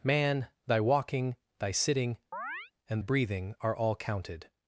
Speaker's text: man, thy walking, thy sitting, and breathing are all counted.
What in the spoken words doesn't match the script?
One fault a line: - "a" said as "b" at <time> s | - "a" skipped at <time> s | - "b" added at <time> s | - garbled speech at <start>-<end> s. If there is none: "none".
none